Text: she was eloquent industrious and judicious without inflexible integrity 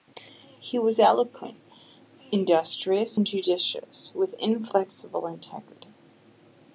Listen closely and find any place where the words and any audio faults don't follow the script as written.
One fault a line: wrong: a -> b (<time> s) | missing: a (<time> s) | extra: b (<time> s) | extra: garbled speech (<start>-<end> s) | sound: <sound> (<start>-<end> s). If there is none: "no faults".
wrong: she -> he (0.6 s)
wrong: without -> with (4.1 s)